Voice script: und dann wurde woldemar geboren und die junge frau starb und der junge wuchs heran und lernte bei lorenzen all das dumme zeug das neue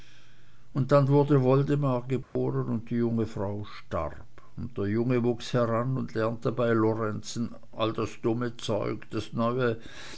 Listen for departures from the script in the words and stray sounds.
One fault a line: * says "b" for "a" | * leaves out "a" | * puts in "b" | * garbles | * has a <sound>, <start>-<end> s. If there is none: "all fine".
* has a dropout, 2.2-2.4 s